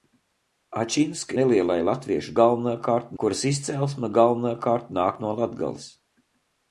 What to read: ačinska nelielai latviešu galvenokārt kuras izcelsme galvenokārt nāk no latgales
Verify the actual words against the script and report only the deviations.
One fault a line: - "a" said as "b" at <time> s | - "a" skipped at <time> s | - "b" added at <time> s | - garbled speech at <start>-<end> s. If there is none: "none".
none